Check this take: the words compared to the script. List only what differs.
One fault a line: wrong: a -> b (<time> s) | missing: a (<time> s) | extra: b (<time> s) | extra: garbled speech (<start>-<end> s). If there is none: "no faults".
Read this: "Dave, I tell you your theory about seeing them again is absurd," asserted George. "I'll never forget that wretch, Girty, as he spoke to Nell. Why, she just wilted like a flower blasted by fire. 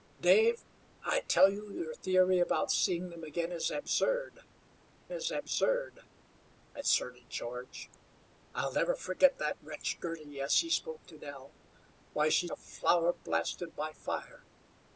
extra: is absurd (5.1 s)
missing: just wilted like (12.5 s)